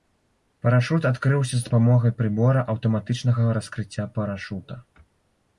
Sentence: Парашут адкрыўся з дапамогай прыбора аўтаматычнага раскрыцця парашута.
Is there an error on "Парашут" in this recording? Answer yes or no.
no